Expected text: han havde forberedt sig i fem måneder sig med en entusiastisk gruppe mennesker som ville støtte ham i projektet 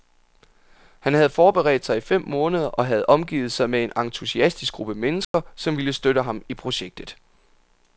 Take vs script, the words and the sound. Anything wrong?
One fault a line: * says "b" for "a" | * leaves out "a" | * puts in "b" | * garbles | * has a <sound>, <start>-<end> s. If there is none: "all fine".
* puts in "og havde omgivet"
* has a dropout, 5.2-5.3 s